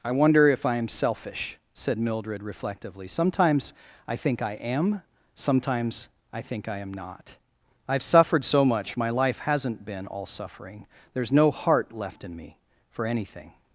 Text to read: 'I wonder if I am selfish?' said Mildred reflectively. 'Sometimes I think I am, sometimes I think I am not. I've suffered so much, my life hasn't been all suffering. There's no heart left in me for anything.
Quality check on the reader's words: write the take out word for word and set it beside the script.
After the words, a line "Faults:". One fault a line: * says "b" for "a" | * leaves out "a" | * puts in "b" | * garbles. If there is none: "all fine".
'I wonder if I am selfish?' said Mildred reflectively. 'Sometimes I think I am, sometimes I think I am not. I've suffered so much, my life hasn't been all suffering. There's no heart left in me for anything.
Faults:
all fine